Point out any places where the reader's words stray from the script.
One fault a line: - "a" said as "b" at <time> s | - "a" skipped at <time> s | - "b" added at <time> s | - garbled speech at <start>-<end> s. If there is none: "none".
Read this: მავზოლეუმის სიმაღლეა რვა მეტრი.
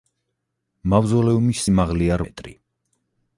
- "რვა" skipped at 2.2 s